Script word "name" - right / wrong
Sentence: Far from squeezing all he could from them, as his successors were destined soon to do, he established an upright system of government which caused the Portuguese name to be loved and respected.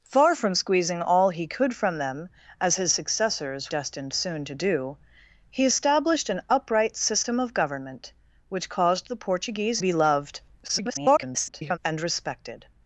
wrong